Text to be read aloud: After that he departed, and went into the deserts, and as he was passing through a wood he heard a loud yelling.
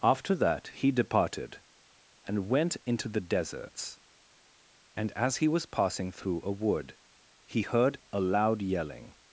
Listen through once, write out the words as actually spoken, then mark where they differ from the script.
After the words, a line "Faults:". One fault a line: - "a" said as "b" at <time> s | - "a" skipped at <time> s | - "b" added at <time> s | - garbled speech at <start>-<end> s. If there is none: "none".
After that he departed, and went into the deserts, and as he was passing through a wood he heard a loud yelling.
Faults:
none